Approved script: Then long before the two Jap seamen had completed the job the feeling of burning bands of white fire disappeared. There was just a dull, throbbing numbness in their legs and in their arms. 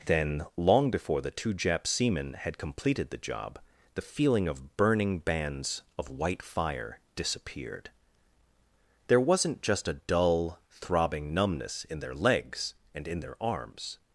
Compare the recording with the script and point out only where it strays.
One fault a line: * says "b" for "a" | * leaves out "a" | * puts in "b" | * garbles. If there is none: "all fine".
* says "wasn't" for "was"